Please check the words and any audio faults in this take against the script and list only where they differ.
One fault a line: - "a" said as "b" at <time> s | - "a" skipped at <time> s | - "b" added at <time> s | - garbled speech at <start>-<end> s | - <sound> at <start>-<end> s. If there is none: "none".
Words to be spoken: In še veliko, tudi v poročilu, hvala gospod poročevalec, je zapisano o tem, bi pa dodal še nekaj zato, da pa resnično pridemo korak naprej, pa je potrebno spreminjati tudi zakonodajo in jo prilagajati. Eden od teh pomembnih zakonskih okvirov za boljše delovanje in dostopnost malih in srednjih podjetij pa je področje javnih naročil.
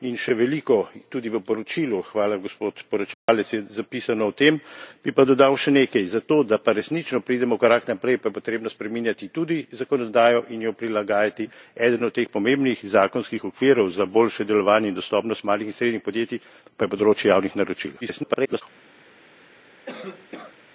- dropout at 3.1-3.3 s
- garbled speech at 18.0-18.6 s
- cough at 19.9-20.6 s